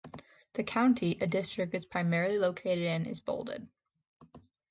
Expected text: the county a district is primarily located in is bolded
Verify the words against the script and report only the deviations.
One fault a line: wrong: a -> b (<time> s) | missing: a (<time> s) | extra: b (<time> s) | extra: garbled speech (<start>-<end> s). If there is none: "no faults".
no faults